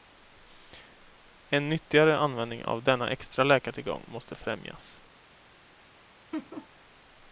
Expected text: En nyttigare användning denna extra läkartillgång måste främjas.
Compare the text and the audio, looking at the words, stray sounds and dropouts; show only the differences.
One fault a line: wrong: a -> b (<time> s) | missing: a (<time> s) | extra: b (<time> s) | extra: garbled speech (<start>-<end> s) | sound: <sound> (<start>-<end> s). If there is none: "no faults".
extra: av (2.6 s)
sound: laugh (6.3-6.7 s)